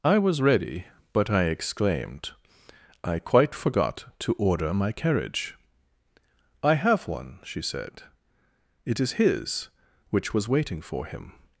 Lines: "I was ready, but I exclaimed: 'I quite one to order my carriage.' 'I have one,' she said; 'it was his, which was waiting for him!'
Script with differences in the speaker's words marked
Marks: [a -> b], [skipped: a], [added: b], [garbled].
"I was ready, but I exclaimed: 'I quite [one -> forgot] to order my carriage.' 'I have one,' she said; 'it [was -> is] his, which was waiting for him!'